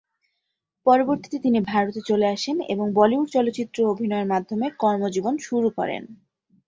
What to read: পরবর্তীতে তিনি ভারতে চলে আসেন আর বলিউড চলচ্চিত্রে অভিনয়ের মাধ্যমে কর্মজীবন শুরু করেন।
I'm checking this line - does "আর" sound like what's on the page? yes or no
no